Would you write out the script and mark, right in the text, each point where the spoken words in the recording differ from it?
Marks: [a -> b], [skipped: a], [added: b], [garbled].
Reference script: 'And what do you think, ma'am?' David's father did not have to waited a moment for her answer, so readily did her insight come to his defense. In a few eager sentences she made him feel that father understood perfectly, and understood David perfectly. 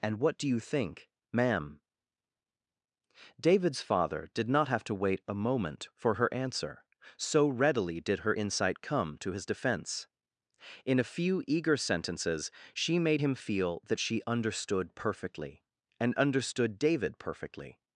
'And what do you think, ma'am?' David's father did not have to [waited -> wait] a moment for her answer, so readily did her insight come to his defense. In a few eager sentences she made him feel that [father -> she] understood perfectly, and understood David perfectly.